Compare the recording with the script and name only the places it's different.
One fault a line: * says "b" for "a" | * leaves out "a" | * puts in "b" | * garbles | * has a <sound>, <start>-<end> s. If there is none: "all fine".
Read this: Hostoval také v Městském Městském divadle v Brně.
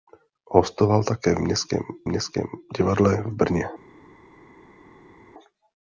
all fine